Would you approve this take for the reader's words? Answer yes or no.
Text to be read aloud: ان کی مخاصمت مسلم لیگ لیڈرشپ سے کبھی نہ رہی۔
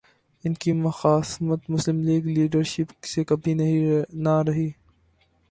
yes